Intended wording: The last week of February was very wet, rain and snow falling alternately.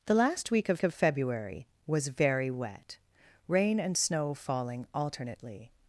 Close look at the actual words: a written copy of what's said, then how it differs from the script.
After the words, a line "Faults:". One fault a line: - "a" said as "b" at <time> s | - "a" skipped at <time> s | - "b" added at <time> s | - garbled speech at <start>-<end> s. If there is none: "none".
The last week of of February was very wet, rain and snow falling alternately.
Faults:
- "of" added at 0.8 s